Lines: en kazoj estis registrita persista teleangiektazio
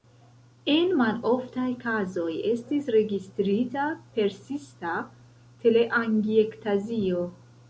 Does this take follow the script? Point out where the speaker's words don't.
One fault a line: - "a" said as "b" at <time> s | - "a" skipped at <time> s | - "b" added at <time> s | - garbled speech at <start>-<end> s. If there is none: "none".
- "maloftaj" added at 1.0 s